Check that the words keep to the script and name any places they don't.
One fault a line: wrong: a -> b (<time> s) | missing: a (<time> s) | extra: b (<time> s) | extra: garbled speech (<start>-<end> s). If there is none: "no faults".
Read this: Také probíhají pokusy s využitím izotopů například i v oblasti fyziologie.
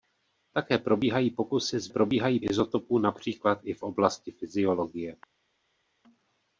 wrong: využitím -> probíhají (1.9 s)